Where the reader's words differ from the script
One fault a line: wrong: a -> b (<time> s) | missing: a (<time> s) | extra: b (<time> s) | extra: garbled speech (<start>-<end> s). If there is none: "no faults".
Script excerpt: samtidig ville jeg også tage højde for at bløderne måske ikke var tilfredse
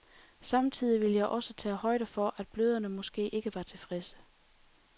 no faults